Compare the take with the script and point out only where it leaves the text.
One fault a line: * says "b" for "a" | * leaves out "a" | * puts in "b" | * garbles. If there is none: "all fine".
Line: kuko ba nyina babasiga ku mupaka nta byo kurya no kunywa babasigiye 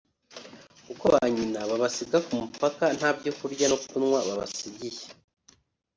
all fine